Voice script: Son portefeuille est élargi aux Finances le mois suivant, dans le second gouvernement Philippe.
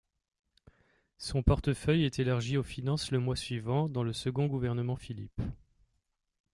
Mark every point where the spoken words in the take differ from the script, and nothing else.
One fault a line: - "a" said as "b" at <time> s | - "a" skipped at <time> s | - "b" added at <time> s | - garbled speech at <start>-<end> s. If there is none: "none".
none